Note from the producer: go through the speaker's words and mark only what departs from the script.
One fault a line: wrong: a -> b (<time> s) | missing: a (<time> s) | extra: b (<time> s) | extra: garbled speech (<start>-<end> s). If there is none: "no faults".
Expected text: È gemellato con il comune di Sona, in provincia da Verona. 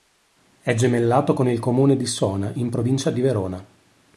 wrong: da -> di (3.1 s)